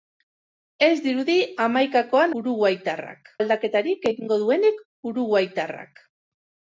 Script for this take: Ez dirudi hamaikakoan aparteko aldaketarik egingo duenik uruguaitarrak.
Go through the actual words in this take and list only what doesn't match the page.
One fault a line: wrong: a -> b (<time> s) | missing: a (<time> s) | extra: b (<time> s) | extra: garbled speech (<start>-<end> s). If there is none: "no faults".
wrong: aparteko -> uruguaitarrak (2.4 s)